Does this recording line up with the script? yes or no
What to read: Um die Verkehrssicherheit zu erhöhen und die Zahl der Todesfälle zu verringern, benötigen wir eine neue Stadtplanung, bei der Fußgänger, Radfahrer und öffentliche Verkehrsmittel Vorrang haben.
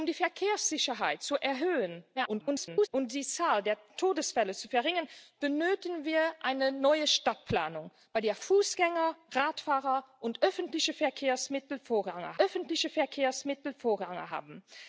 no